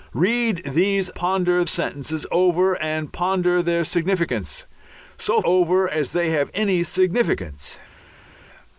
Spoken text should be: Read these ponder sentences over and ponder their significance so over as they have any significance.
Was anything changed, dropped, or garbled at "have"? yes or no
no